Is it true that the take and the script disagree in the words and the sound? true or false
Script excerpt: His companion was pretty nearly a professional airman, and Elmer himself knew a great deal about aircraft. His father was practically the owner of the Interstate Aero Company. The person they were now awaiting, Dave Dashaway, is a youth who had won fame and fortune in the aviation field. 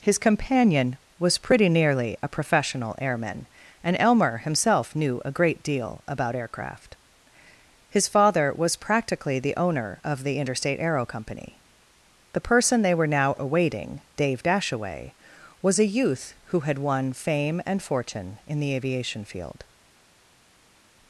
true